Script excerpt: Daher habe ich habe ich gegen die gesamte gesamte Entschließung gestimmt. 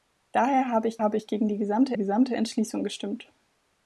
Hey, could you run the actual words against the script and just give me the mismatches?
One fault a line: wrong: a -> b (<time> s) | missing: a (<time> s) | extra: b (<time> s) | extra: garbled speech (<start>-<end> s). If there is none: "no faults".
no faults